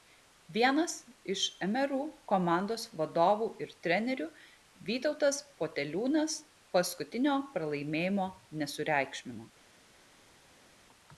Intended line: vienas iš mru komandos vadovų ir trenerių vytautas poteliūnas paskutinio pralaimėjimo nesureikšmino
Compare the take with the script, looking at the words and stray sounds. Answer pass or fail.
pass